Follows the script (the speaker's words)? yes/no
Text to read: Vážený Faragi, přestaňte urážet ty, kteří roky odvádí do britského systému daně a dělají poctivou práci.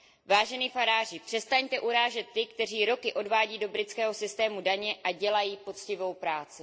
yes